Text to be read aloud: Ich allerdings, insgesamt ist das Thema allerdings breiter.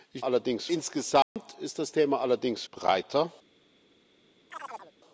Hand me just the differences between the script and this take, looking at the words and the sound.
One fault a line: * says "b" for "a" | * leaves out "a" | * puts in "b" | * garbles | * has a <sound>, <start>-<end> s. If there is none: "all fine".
* has a dropout, 1.2-1.4 s
* has a chirp, 4.5-4.9 s